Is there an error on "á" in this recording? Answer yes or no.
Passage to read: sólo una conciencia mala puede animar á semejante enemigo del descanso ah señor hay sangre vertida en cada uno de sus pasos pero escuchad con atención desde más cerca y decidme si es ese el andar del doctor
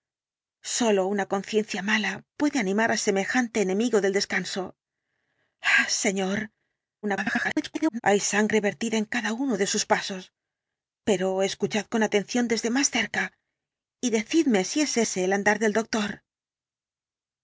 no